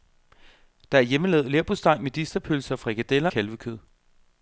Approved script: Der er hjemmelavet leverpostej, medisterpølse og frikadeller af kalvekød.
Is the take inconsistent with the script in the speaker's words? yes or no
yes